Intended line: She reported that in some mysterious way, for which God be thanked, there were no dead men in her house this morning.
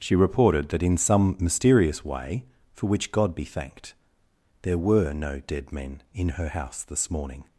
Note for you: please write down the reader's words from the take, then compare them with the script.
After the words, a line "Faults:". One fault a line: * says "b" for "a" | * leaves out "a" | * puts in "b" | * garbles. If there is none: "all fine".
She reported that in some mysterious way, for which God be thanked, there were no dead men in her house this morning.
Faults:
all fine